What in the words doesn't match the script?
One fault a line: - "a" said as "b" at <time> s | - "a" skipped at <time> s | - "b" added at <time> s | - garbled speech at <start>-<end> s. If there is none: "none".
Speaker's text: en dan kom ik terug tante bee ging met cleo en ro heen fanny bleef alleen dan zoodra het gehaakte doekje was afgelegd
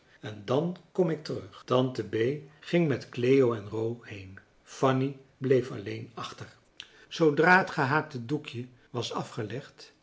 - "dan" said as "achter" at 6.1 s